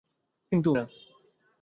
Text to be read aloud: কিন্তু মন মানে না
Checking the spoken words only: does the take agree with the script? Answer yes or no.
no